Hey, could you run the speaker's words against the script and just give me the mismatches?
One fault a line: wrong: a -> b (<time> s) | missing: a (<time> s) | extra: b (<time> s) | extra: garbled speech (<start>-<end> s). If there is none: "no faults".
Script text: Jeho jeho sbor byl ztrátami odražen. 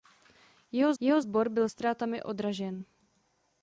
no faults